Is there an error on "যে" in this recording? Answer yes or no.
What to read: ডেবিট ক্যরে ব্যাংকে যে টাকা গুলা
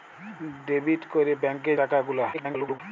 yes